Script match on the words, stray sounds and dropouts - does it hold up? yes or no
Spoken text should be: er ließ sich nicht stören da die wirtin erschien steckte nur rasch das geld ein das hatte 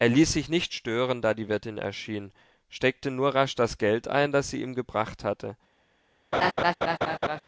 no